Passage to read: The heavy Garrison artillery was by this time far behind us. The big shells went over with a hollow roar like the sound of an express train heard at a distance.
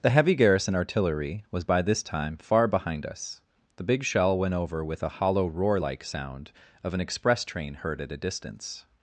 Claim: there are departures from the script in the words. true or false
true